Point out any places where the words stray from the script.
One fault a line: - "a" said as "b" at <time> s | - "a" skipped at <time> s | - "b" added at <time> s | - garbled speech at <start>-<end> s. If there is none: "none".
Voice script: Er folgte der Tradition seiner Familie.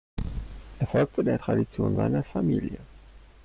none